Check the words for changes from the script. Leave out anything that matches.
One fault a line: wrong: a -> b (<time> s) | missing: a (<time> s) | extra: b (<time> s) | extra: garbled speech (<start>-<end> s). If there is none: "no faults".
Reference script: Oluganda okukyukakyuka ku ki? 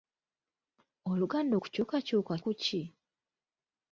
no faults